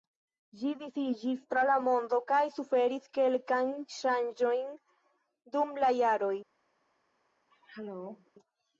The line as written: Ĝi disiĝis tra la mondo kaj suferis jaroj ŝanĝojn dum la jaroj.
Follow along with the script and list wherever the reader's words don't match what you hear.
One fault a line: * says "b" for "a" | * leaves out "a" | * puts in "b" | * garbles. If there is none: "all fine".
* says "kelkajn" for "jaroj"